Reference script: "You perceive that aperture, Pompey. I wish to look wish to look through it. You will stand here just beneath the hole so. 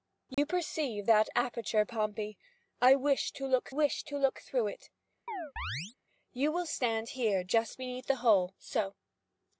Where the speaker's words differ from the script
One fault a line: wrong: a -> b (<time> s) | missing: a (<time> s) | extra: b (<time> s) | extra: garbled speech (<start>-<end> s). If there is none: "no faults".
no faults